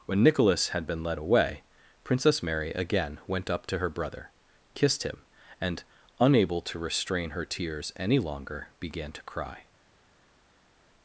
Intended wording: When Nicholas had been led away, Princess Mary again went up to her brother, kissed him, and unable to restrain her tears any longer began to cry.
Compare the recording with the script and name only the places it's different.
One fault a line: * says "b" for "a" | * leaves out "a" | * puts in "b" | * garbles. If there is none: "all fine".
all fine